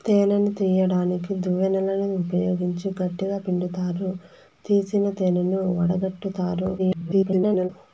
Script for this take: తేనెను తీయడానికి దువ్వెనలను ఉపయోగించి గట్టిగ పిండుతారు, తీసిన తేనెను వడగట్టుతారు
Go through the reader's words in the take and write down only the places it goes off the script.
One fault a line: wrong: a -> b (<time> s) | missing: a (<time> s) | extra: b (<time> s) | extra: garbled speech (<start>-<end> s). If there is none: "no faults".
extra: garbled speech (6.8-7.7 s)